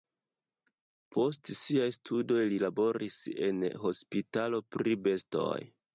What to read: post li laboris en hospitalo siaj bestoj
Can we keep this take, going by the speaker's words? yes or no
no